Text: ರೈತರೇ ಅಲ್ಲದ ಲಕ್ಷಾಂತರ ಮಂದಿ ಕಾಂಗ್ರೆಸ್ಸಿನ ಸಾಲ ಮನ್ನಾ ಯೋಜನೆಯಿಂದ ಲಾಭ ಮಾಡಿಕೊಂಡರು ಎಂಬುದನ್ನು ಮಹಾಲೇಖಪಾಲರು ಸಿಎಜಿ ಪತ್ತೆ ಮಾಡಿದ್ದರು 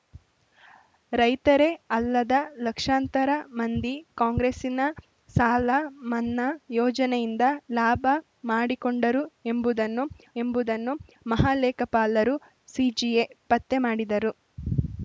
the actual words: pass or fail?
fail